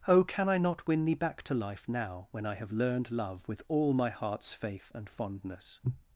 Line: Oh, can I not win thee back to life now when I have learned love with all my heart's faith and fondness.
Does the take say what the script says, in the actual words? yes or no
yes